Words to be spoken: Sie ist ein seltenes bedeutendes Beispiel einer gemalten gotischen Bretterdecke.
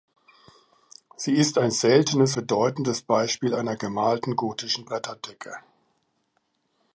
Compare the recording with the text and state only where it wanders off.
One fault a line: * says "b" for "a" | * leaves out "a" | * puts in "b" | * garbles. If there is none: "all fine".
all fine